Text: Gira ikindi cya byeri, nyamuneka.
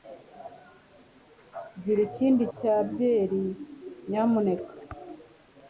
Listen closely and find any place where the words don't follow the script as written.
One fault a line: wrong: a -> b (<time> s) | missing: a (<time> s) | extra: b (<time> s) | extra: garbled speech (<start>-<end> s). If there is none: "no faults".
no faults